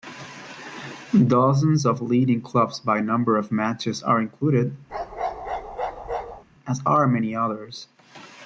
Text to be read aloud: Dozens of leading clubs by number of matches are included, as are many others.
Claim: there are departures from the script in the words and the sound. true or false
true